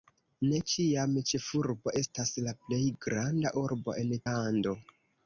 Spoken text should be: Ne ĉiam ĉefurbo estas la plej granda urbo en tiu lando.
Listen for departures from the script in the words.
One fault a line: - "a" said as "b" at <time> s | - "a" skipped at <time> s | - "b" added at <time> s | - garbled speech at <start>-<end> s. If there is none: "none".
- "tiu" skipped at 4.2 s